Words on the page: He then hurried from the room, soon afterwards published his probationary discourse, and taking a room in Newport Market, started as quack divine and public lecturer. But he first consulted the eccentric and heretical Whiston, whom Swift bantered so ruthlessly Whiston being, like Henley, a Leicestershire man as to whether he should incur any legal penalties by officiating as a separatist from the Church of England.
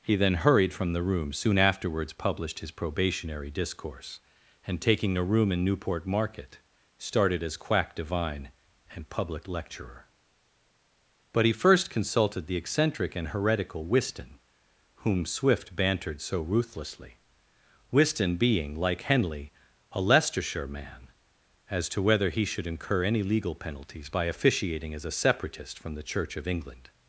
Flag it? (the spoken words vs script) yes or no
no